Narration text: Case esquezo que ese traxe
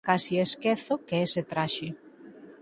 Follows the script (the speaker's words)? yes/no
yes